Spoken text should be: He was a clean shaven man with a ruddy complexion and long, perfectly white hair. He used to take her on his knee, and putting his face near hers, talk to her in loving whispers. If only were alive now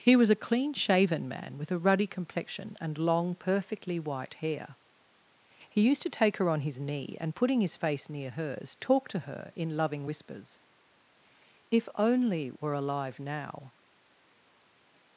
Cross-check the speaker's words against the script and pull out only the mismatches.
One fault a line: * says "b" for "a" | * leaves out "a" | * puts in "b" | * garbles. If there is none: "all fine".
all fine